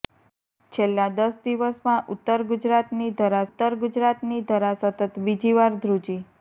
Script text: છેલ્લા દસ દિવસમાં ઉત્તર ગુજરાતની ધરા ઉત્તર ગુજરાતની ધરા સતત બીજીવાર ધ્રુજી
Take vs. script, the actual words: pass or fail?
pass